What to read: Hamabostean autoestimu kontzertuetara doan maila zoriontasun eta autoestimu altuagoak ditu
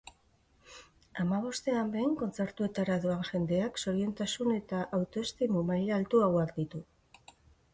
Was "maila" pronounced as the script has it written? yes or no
no